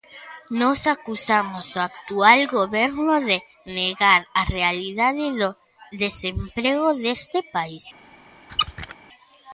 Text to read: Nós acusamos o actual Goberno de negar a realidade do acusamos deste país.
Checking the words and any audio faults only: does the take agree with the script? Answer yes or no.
no